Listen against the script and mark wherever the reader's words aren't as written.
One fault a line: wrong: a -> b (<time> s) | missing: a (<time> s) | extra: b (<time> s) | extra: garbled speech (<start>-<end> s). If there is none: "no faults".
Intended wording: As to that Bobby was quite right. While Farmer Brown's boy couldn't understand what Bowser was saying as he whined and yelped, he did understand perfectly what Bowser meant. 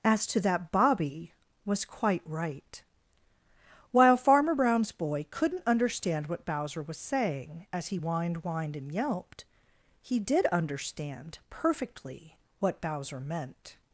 extra: whined (8.4 s)